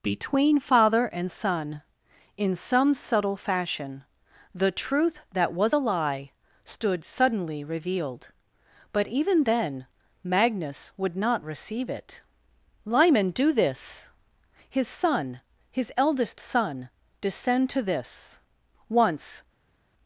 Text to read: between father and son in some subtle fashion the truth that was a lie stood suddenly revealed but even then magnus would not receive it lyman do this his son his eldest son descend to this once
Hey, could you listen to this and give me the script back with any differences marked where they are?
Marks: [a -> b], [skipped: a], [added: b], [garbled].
between father and son in some subtle fashion the truth that was a lie stood suddenly revealed but even then magnus would not receive it lyman do this his son his eldest son descend to this once